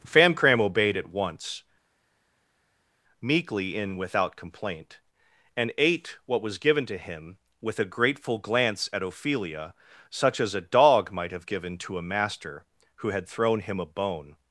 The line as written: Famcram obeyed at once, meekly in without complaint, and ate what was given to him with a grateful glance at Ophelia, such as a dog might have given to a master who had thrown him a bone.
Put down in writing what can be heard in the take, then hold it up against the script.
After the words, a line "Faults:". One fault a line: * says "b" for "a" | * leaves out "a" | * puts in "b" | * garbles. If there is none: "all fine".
Famcram obeyed at once, meekly in without complaint, and ate what was given to him with a grateful glance at Ophelia, such as a dog might have given to a master who had thrown him a bone.
Faults:
all fine